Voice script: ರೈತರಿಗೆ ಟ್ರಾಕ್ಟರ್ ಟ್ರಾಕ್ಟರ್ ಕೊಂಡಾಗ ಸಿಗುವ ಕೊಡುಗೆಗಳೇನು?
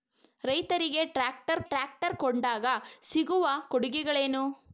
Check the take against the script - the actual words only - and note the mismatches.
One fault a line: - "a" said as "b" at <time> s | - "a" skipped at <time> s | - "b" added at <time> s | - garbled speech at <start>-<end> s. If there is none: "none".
none